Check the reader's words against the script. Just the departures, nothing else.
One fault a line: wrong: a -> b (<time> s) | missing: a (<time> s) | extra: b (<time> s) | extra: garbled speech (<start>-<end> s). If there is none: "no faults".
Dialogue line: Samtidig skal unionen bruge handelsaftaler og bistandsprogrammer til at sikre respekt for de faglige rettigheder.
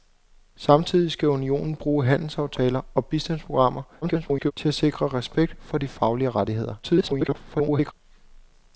extra: garbled speech (4.0-4.5 s)
extra: garbled speech (6.8-7.9 s)